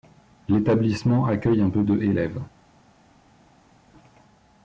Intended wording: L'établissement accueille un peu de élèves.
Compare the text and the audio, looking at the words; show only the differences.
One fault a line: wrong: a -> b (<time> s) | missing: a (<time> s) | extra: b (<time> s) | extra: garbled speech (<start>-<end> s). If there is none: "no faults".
no faults